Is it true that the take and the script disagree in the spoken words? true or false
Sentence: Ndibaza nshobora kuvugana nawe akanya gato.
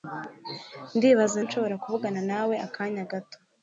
false